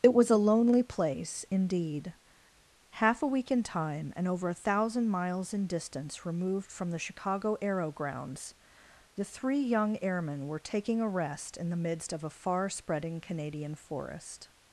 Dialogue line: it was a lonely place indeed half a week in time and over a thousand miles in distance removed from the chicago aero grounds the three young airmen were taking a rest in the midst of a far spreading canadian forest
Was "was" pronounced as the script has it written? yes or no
yes